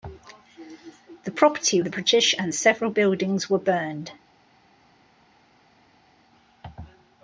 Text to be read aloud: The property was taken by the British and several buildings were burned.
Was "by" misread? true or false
true